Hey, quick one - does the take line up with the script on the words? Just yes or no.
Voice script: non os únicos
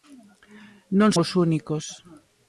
yes